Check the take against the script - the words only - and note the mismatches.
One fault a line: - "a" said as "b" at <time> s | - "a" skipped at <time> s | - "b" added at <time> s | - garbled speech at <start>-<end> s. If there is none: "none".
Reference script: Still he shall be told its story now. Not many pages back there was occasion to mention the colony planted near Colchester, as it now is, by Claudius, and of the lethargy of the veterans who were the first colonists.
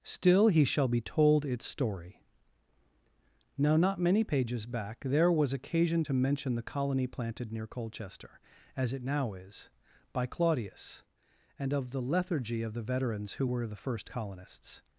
none